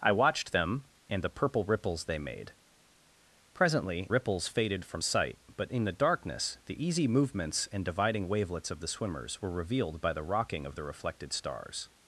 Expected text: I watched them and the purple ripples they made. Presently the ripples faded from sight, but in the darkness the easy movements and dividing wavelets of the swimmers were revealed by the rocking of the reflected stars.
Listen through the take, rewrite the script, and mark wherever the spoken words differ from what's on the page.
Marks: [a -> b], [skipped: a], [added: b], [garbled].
I watched them and the purple ripples they made. Presently [skipped: the] ripples faded from sight, but in the darkness the easy movements and dividing wavelets of the swimmers were revealed by the rocking of the reflected stars.